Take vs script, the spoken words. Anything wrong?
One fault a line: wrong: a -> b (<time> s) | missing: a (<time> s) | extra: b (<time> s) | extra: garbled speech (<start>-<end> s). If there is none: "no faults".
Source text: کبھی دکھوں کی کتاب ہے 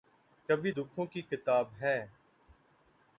no faults